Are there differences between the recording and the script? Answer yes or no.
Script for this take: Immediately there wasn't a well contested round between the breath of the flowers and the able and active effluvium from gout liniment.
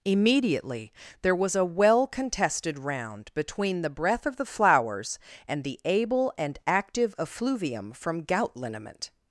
yes